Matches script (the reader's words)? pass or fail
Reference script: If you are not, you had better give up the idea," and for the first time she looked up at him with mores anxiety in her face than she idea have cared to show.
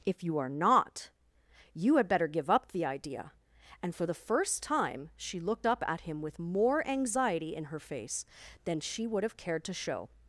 fail